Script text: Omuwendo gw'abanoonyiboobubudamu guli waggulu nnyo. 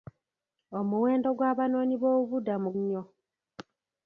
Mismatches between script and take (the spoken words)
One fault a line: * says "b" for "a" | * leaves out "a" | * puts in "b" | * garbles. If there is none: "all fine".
* leaves out "guli waggulu"